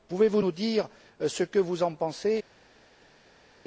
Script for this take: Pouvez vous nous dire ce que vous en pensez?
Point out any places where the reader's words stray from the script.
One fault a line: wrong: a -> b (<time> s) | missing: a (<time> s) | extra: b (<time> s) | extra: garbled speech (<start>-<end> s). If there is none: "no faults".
no faults